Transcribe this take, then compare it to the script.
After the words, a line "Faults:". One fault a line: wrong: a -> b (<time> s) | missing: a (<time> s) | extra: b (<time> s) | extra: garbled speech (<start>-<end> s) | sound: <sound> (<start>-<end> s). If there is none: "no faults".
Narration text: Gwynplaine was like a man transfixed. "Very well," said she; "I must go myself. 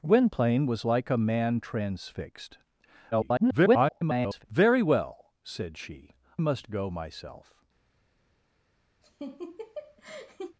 Gwynplaine was like a man transfixed. [garbled] "Very well," said she; "must go myself.
Faults:
extra: garbled speech (3.1-4.4 s)
missing: I (6.1 s)
sound: laugh (9.0-10.6 s)